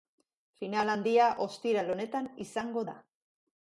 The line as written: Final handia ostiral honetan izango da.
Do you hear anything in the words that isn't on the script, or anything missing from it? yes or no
no